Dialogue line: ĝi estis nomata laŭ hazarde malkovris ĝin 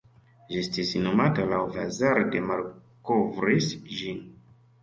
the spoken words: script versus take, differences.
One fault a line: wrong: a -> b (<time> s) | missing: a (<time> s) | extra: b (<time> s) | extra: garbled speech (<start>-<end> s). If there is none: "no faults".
no faults